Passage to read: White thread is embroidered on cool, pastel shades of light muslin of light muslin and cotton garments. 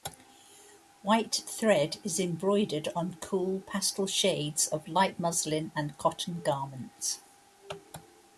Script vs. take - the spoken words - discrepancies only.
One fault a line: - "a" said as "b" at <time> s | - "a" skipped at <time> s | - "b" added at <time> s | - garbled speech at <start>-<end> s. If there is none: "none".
- "of light muslin" skipped at 5.7 s